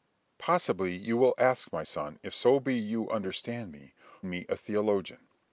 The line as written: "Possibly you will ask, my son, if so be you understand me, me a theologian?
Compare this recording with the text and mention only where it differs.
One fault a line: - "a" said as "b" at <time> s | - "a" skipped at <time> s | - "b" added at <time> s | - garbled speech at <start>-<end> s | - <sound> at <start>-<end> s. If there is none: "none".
none